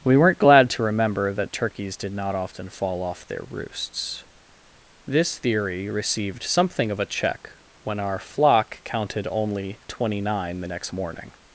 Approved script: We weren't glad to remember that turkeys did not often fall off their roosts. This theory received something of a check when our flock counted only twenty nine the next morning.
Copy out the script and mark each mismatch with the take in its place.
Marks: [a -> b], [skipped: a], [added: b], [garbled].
We weren't glad to remember that turkeys did not often fall off their roosts. This theory received something of a check when our flock counted only twenty nine the next morning.